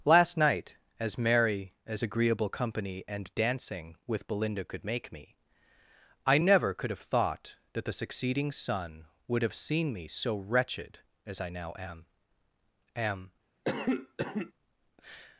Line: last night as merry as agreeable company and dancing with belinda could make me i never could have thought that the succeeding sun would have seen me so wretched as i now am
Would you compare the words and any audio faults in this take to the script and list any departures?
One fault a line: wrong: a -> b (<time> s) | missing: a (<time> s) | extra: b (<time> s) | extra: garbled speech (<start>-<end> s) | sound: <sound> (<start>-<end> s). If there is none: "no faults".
extra: am (13.0 s)
sound: cough (13.6-14.5 s)